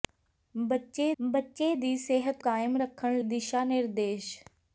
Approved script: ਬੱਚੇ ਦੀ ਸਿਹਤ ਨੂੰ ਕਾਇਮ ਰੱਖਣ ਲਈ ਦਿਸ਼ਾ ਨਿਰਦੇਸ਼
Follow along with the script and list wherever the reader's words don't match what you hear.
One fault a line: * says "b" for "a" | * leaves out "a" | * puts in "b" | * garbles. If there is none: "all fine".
* puts in "ਬੱਚੇ"
* leaves out "ਨੂੰ"
* leaves out "ਲਈ"